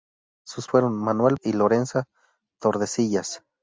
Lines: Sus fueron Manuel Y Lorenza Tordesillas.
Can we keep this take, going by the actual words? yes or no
yes